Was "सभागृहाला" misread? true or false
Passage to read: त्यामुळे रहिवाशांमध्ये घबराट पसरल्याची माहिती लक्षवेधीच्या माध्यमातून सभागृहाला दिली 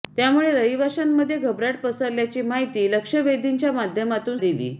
true